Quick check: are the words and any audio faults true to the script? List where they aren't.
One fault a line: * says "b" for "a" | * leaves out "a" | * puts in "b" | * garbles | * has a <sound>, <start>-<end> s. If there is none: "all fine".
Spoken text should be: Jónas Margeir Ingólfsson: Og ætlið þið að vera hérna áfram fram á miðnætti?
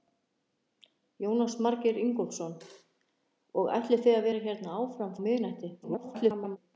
* leaves out "fram"
* garbles